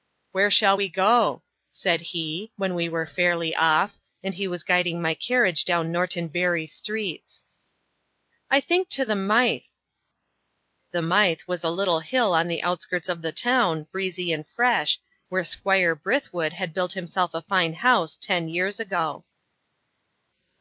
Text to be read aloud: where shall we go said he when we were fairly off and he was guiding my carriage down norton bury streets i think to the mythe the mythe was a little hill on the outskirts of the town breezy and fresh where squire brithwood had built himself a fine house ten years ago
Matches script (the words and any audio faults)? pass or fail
pass